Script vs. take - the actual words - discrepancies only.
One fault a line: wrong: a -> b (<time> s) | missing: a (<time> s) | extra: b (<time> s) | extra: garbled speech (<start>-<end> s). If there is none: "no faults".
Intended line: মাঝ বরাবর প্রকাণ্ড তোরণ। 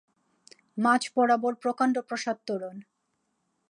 extra: প্রাসাদ (2.1 s)